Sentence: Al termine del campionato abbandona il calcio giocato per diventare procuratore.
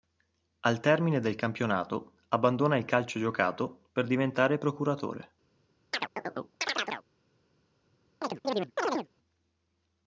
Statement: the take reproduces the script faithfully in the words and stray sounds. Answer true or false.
false